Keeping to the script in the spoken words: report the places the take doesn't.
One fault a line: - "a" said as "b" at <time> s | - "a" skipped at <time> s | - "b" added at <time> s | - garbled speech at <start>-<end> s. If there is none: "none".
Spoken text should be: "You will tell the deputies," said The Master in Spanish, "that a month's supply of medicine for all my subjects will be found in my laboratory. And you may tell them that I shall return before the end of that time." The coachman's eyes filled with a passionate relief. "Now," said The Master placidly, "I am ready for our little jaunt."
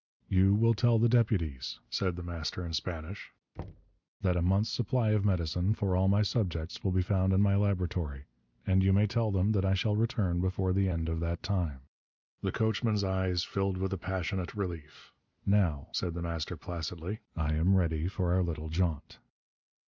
none